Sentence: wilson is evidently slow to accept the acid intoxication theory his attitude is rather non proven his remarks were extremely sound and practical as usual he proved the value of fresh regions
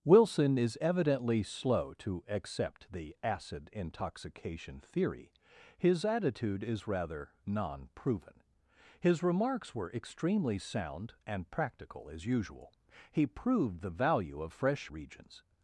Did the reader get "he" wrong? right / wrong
right